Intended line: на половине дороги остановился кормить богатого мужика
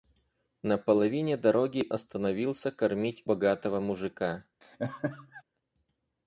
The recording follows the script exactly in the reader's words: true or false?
true